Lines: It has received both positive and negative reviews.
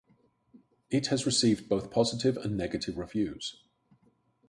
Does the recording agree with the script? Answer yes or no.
yes